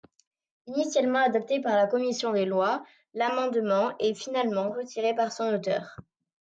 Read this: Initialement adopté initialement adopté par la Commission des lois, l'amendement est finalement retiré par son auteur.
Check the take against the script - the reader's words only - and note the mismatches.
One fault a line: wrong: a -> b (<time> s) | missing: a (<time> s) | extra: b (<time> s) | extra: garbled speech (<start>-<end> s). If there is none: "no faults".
missing: initialement adopté (1.6 s)